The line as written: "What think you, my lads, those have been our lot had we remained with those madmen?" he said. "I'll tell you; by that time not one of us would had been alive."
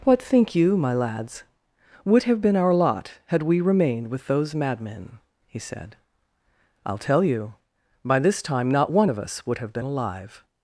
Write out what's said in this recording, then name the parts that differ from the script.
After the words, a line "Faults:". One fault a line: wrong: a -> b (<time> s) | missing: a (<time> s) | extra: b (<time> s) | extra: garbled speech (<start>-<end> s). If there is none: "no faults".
"What think you, my lads, would have been our lot had we remained with those madmen?" he said. "I'll tell you; by this time not one of us would have been alive."
Faults:
wrong: those -> would (2.0 s)
wrong: that -> this (8.2 s)
wrong: had -> have (9.6 s)